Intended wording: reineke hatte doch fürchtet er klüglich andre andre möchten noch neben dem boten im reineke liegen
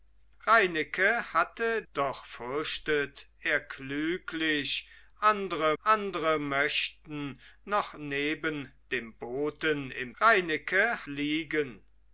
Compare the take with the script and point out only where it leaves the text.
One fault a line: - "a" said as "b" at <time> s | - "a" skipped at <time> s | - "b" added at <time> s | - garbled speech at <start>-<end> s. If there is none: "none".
none